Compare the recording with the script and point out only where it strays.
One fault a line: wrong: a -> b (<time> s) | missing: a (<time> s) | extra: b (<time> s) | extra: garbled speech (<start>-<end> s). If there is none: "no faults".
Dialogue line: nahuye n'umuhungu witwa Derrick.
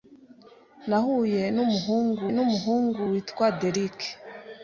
extra: n'umuhungu (2.3 s)